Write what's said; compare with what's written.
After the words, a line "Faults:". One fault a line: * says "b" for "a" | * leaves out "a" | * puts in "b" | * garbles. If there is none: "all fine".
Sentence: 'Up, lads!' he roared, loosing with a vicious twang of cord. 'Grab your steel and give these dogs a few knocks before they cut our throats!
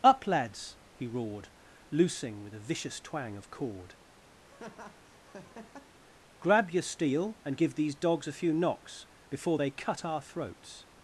'Up, lads!' he roared, loosing with a vicious twang of cord. 'Grab your steel and give these dogs a few knocks before they cut our throats!
Faults:
all fine